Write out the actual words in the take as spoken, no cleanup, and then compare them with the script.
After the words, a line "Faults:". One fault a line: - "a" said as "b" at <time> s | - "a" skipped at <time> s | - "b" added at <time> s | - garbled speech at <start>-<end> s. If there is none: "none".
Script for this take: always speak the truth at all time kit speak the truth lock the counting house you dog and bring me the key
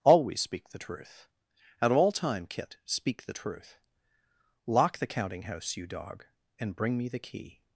always speak the truth at all time kit speak the truth lock the counting house you dog and bring me the key
Faults:
none